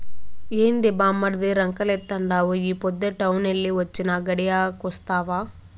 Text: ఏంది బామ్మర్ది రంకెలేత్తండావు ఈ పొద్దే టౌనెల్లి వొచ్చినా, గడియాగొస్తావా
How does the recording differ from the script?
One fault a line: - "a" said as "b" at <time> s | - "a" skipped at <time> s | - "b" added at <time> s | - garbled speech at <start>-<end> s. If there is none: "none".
none